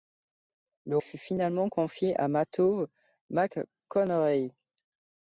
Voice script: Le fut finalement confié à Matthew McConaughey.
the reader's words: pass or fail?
pass